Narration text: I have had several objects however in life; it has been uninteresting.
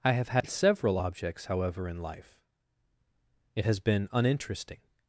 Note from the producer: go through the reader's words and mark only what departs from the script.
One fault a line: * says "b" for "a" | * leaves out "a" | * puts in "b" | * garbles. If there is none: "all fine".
all fine